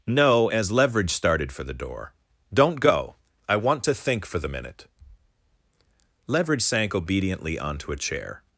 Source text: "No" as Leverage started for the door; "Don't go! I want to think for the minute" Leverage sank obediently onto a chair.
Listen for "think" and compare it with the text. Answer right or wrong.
right